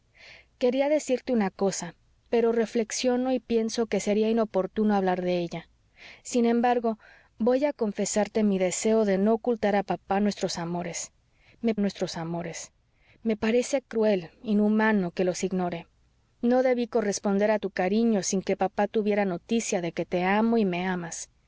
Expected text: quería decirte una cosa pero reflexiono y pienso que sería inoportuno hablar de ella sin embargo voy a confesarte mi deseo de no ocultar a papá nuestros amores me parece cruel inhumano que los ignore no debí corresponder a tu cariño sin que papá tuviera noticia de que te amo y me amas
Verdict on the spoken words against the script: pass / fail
fail